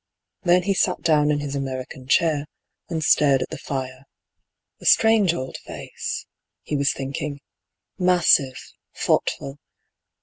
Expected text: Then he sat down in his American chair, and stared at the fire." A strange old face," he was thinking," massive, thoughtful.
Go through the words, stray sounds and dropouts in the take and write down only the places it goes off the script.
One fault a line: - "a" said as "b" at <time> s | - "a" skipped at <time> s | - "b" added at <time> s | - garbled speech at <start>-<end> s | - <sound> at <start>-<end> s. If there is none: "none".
none